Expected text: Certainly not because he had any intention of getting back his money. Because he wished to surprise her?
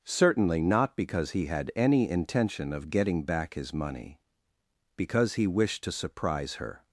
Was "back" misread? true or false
false